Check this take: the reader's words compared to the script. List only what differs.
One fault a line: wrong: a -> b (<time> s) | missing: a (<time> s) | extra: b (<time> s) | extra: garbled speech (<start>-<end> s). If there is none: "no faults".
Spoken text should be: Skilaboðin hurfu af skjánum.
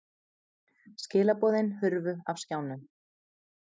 no faults